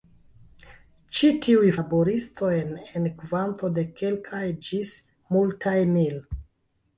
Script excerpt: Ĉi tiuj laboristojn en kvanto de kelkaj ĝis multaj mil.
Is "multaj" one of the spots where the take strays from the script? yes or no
no